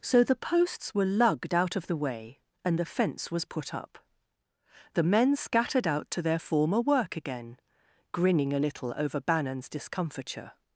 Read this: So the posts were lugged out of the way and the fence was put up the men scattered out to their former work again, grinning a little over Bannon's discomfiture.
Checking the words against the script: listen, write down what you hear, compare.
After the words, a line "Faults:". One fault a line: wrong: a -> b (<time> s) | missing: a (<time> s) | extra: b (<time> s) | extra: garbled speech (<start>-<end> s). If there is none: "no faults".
So the posts were lugged out of the way and the fence was put up the men scattered out to their former work again, grinning a little over Bannon's discomfiture.
Faults:
no faults